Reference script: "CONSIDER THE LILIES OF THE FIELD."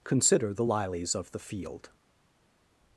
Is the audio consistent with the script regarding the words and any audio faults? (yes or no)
yes